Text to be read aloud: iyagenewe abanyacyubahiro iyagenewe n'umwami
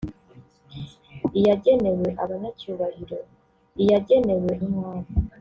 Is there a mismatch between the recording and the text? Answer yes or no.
no